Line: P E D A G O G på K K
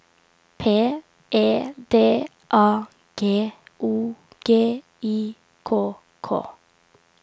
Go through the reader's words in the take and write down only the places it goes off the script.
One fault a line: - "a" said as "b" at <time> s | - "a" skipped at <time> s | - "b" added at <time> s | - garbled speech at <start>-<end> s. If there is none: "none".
- "på" said as "I" at 5.0 s